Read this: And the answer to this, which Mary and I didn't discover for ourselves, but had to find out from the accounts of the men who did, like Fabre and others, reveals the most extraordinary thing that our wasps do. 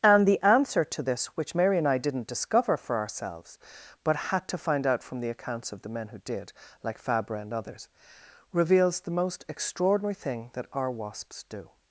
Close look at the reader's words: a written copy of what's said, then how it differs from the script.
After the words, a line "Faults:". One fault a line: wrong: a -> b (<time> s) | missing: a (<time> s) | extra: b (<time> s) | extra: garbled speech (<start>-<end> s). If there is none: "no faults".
And the answer to this, which Mary and I didn't discover for ourselves, but had to find out from the accounts of the men who did, like Fabre and others, reveals the most extraordinary thing that our wasps do.
Faults:
no faults